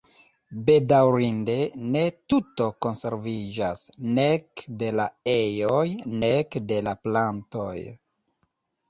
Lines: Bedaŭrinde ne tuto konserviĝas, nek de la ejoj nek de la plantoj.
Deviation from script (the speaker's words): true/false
false